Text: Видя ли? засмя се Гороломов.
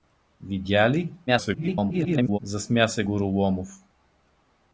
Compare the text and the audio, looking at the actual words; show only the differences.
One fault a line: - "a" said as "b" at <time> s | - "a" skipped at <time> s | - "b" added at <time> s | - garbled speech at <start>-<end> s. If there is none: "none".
- garbled speech at 1.3-2.4 s